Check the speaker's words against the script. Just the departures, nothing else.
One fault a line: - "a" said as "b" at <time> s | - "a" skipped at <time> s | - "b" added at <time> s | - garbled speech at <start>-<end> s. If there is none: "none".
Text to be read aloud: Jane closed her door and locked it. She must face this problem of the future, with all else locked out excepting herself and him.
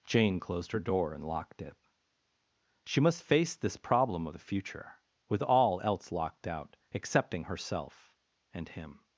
none